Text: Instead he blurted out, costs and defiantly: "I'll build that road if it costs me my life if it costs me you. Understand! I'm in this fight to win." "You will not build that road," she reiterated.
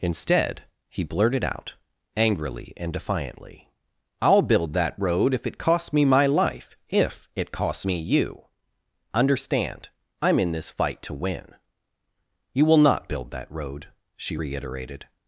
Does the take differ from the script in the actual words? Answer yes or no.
yes